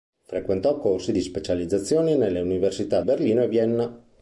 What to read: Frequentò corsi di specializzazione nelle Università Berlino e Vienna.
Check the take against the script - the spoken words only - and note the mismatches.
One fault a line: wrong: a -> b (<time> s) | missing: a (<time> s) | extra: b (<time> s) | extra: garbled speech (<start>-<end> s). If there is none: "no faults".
no faults